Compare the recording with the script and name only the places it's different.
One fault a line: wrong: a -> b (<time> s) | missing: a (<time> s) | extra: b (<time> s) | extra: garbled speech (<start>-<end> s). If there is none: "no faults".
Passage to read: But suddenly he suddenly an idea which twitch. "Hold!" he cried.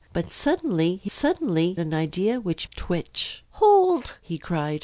no faults